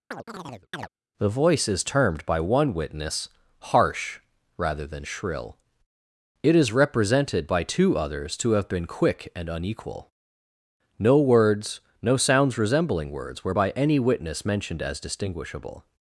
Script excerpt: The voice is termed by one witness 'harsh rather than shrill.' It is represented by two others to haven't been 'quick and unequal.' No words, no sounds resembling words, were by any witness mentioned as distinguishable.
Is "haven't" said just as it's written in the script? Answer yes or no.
no